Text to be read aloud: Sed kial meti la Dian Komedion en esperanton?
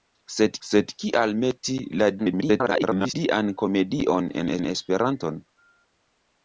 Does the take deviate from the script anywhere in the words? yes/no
yes